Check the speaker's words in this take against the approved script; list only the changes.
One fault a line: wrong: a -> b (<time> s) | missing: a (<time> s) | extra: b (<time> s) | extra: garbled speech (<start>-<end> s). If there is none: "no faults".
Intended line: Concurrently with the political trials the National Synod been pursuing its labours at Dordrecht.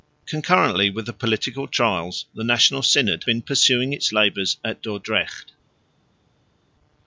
no faults